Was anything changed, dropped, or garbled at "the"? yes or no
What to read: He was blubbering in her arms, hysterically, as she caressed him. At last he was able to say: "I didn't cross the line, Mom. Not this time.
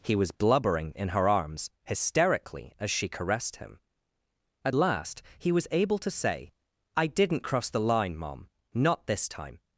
no